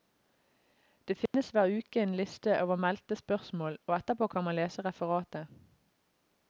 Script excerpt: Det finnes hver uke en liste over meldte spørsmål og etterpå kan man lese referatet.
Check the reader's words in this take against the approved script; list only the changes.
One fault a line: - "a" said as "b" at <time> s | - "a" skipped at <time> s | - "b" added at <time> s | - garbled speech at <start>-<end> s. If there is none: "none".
none